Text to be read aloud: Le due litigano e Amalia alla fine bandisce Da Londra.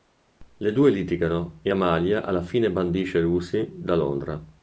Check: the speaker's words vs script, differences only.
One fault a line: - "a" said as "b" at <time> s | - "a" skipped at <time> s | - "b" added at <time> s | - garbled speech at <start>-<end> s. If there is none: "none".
- "Lucy" added at 3.2 s